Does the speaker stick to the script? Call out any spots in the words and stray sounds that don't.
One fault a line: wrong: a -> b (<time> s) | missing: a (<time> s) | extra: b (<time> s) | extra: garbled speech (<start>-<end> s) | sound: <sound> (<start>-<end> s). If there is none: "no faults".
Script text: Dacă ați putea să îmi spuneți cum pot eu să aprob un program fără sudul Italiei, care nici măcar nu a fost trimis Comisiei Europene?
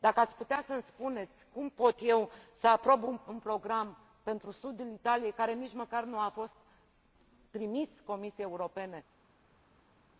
wrong: fără -> pentru (4.2 s)